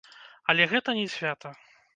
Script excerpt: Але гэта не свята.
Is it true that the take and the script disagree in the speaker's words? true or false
false